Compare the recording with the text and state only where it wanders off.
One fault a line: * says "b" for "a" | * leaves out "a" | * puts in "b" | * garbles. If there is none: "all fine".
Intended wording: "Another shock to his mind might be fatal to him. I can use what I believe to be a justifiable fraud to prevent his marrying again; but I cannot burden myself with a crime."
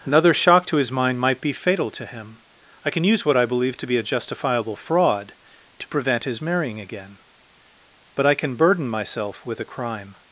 * says "can" for "cannot"